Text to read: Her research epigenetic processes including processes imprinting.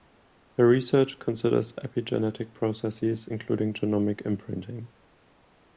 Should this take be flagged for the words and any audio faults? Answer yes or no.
yes